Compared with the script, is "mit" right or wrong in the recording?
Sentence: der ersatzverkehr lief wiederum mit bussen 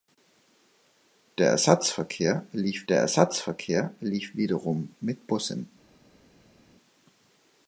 right